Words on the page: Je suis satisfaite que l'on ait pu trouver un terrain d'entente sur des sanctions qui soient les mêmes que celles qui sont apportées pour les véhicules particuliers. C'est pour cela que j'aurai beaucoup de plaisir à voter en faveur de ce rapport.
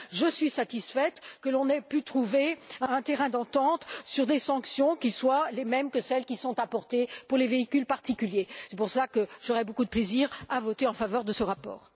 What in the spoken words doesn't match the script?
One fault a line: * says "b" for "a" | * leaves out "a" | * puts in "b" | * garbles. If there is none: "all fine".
all fine